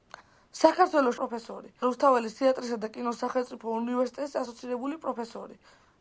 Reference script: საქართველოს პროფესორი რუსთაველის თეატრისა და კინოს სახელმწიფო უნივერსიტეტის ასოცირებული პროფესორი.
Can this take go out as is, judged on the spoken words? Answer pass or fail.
pass